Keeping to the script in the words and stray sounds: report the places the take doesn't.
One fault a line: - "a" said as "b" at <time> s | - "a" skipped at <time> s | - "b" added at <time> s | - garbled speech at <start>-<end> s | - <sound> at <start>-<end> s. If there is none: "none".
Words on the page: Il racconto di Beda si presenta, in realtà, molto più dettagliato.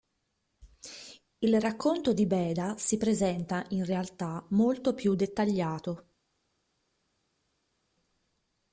none